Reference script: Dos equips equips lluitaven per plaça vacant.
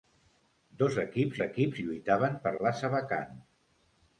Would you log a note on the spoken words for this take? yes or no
no